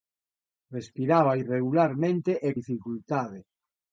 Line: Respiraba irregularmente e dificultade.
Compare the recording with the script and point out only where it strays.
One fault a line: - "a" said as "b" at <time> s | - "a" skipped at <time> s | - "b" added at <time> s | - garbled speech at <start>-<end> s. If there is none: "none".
none